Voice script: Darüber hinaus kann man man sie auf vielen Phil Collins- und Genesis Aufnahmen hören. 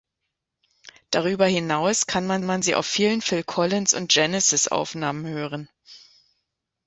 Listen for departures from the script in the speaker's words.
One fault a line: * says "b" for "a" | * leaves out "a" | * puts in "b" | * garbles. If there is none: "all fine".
all fine